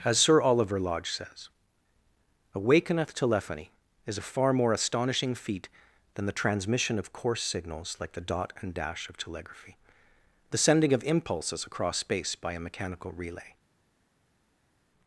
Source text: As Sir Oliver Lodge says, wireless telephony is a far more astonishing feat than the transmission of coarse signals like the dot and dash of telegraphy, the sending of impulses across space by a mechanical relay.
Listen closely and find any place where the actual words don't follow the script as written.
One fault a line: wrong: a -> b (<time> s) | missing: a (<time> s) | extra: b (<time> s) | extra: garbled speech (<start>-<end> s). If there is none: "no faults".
wrong: wireless -> awakeneth (2.5 s)